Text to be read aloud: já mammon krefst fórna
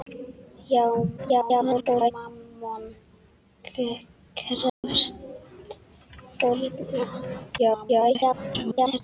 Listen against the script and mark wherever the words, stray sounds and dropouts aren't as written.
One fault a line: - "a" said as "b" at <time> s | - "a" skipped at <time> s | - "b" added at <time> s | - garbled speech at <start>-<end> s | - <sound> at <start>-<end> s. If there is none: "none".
- garbled speech at 1.2-2.1 s
- dropout at 4.7-4.8 s
- garbled speech at 7.6-9.0 s